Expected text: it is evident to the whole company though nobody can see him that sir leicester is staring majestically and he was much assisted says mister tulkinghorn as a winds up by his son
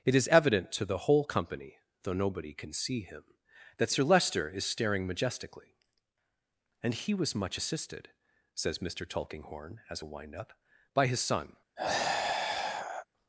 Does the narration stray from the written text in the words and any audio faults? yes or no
yes